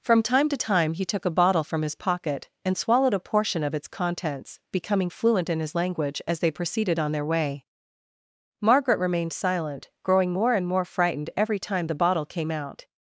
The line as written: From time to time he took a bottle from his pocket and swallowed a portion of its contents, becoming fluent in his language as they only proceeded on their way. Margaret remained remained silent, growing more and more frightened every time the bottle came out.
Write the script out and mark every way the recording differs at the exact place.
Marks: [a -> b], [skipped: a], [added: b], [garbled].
From time to time he took a bottle from his pocket and swallowed a portion of its contents, becoming fluent in his language as they [skipped: only] proceeded on their way. Margaret remained [skipped: remained] silent, growing more and more frightened every time the bottle came out.